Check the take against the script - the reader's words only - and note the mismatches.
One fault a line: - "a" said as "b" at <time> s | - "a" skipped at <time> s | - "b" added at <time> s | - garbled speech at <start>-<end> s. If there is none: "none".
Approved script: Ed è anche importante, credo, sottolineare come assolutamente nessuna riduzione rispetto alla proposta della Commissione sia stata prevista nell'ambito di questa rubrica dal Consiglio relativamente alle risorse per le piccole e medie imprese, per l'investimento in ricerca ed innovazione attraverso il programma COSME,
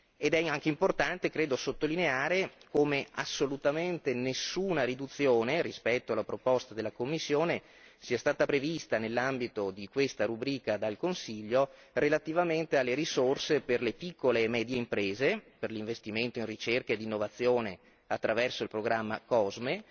none